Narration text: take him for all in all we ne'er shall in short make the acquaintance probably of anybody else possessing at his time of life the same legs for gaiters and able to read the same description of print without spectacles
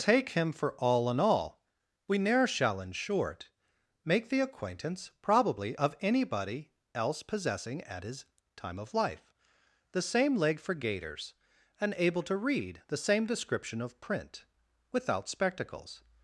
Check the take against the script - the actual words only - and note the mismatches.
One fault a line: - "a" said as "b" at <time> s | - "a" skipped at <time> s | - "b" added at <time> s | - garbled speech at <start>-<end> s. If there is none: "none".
- "legs" said as "leg" at 10.3 s